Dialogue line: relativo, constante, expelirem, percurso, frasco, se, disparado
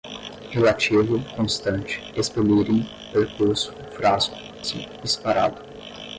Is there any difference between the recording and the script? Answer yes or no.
no